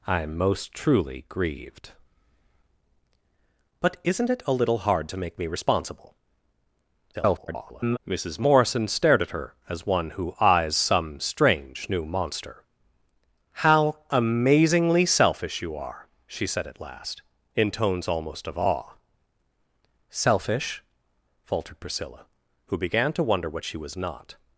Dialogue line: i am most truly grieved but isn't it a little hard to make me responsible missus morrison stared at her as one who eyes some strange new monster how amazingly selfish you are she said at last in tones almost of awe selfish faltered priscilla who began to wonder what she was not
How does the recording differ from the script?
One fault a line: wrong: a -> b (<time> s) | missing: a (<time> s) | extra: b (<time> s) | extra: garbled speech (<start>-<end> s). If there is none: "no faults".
extra: garbled speech (7.1-8.0 s)